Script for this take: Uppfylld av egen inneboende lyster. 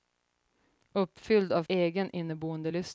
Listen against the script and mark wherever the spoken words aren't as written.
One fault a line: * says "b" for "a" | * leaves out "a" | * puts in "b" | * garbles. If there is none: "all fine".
all fine